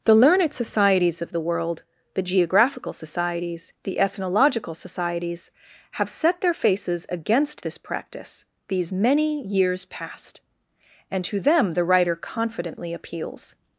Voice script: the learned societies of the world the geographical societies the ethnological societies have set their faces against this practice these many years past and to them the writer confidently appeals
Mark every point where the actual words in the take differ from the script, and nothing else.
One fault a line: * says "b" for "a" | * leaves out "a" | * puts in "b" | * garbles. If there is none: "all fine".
all fine